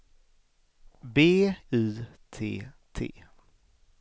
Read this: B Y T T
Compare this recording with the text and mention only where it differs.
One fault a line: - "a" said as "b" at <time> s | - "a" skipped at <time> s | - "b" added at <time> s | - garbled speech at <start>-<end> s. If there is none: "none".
none